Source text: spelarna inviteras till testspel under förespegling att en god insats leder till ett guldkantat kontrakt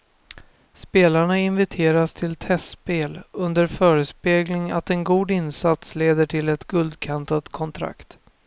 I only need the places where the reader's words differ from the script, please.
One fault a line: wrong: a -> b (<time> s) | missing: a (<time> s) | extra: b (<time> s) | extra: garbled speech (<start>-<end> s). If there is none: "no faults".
no faults